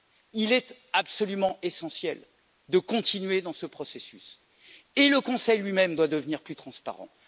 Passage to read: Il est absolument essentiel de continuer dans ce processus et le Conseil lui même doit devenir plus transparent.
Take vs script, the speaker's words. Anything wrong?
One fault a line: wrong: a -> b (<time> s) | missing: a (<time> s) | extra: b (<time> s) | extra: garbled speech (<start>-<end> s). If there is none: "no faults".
no faults